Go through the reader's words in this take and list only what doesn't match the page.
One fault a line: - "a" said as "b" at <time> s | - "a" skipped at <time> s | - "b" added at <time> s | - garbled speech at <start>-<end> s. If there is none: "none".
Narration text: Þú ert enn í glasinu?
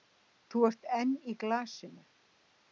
none